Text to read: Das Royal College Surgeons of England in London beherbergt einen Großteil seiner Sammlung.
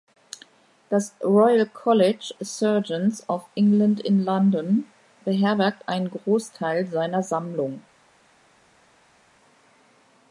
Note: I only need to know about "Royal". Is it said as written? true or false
true